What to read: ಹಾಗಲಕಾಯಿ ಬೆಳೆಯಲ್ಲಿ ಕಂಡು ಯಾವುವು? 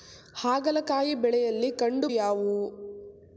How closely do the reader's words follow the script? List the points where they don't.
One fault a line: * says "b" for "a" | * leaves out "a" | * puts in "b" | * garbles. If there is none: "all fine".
all fine